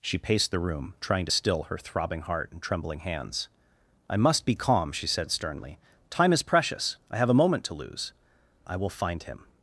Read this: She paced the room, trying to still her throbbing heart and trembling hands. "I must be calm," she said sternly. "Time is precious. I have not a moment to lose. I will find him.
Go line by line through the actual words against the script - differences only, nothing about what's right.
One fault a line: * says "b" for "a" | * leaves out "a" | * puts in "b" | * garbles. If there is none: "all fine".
* leaves out "not"